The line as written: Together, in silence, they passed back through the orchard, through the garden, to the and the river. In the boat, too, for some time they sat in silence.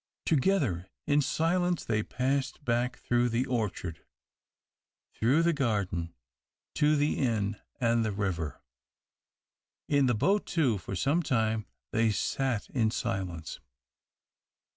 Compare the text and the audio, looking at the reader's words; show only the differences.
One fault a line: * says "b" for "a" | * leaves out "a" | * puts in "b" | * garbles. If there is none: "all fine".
* puts in "inn"